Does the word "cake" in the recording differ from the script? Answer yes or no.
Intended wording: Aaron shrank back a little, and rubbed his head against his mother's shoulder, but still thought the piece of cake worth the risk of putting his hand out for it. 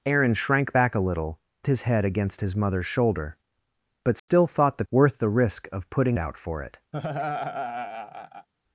yes